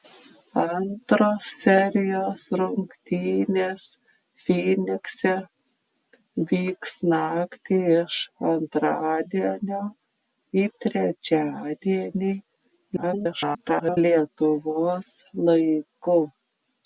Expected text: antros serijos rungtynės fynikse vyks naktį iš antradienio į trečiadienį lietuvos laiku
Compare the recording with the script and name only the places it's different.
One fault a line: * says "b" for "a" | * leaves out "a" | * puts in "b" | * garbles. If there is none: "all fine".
* garbles